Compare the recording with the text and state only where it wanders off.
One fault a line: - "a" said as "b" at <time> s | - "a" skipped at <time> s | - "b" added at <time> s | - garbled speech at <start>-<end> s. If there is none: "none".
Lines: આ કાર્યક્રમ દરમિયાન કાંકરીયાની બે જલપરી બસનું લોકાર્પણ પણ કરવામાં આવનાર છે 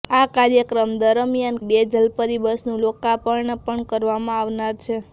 - "કાંકરીયાની" skipped at 1.6 s